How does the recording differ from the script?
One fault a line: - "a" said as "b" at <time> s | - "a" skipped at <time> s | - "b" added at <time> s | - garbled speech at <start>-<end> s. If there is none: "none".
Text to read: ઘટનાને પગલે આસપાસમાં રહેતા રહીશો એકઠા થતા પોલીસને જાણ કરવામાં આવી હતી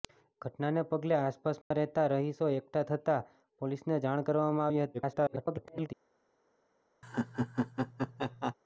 - garbled speech at 4.9-5.9 s